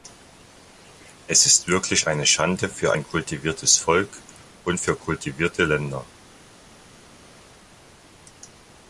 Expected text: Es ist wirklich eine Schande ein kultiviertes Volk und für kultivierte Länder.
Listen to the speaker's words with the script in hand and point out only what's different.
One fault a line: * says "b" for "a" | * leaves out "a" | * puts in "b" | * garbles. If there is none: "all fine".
* puts in "für"